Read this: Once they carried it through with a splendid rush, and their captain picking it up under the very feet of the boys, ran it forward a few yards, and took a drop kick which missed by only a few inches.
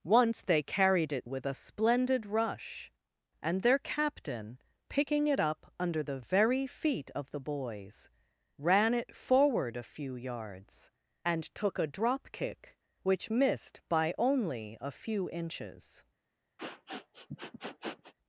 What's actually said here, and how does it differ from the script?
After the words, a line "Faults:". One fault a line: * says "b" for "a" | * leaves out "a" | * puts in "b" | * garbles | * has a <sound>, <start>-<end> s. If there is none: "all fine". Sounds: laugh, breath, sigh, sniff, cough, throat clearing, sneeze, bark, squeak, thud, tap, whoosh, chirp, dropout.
Once they carried it with a splendid rush, and their captain picking it up under the very feet of the boys, ran it forward a few yards, and took a drop kick which missed by only a few inches.
Faults:
* leaves out "through"
* has a sniff, 16.6-18.1 s